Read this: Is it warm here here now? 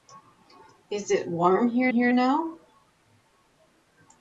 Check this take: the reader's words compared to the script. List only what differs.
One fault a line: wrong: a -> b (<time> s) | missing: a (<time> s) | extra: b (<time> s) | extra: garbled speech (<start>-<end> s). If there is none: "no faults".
no faults